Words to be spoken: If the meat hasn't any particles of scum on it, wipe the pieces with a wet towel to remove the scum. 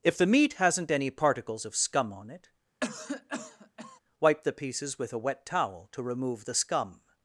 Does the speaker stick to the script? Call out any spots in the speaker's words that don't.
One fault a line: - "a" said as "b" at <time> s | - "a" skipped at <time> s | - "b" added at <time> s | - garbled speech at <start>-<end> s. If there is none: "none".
none